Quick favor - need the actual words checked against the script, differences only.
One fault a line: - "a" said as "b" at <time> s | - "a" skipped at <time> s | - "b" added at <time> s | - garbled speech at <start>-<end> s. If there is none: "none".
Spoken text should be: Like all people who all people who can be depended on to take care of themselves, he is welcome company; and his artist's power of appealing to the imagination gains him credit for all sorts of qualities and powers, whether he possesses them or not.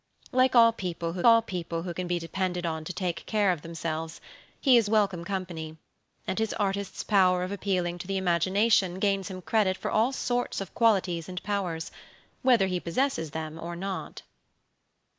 none